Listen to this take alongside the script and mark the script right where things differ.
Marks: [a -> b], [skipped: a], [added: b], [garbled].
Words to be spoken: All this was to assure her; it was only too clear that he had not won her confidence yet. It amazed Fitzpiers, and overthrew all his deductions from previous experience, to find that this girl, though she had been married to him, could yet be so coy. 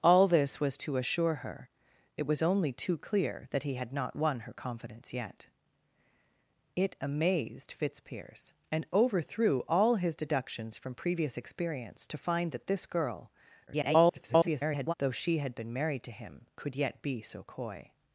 All this was to assure her; it was only too clear that he had not won her confidence yet. It amazed Fitzpiers, and overthrew all his deductions from previous experience, to find that this girl, [garbled] though she had been married to him, could yet be so coy.